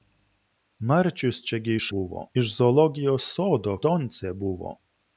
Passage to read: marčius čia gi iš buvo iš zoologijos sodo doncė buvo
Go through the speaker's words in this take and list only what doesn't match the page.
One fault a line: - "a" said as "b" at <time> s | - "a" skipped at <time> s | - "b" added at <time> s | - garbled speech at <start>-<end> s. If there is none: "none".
none